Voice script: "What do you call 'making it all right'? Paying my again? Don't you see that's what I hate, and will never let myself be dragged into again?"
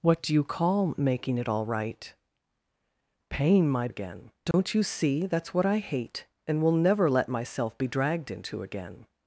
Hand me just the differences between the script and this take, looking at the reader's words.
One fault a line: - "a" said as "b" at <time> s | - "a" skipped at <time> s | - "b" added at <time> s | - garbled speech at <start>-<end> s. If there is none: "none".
none